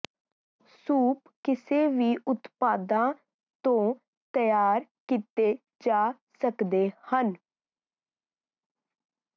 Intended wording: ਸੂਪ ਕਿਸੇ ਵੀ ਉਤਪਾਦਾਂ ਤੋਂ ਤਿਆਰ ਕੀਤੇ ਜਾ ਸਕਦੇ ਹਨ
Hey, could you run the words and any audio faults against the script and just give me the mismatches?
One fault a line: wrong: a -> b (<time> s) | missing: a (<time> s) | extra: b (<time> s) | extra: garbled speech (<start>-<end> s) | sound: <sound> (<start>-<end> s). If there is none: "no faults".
no faults